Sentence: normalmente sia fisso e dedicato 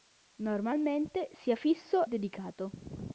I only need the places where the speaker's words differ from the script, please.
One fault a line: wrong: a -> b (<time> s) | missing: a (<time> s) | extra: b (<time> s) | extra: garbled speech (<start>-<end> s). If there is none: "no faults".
missing: e (2.1 s)